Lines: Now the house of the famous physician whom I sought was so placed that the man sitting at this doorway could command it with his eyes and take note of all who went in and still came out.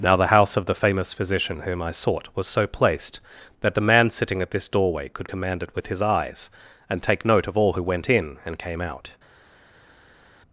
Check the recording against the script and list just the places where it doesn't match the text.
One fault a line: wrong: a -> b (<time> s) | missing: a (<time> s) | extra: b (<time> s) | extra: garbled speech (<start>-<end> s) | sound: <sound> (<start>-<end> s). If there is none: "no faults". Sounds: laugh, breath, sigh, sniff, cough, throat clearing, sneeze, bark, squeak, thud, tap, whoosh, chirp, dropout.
missing: still (8.6 s)